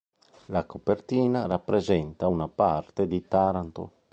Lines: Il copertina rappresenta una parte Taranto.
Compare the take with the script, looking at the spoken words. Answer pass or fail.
fail